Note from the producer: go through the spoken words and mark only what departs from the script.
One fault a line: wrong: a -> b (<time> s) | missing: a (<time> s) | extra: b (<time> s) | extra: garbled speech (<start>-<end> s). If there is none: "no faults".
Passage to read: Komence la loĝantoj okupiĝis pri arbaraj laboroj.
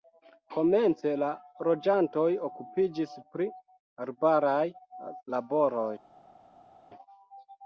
no faults